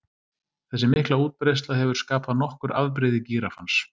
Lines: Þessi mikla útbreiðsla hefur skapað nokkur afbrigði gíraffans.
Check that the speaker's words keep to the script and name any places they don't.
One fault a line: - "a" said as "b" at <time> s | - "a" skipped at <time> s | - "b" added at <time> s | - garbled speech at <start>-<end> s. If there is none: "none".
none